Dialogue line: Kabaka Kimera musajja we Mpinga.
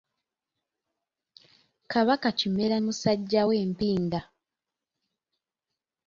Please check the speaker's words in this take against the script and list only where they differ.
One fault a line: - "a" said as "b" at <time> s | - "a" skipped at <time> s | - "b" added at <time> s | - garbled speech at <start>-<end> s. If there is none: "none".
none